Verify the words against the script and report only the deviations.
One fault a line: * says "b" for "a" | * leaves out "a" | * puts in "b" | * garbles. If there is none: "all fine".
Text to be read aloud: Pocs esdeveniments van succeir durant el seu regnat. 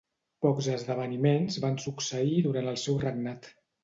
all fine